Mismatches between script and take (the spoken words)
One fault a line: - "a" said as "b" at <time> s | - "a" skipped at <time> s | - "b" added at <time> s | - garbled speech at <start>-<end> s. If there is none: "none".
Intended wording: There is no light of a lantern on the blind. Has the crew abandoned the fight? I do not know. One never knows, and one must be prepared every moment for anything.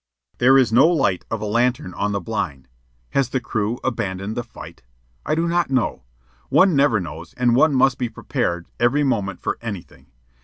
none